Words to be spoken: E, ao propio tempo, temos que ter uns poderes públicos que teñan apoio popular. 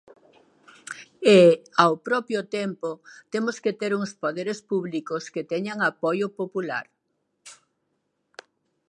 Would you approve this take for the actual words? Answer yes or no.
yes